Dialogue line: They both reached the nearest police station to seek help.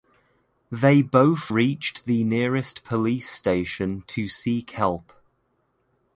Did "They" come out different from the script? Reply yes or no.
no